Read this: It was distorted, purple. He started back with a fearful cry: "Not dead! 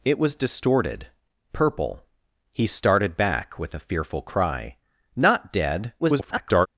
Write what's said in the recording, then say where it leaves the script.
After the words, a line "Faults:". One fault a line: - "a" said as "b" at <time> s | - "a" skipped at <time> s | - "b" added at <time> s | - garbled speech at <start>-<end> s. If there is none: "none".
It was distorted, purple. He started back with a fearful cry: "Not dead! [garbled]
Faults:
- garbled speech at 6.0-6.7 s